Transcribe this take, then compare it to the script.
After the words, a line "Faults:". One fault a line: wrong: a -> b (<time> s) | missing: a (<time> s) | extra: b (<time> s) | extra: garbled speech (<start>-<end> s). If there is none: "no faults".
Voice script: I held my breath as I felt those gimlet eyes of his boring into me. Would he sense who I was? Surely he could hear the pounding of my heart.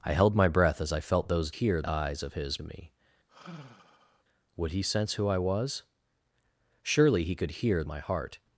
I held my breath as I felt those hear eyes of his me. Would he sense who I was? Surely he could hear my heart.
Faults:
wrong: gimlet -> hear (1.5 s)
missing: boring into (2.6 s)
missing: the pounding of (7.8 s)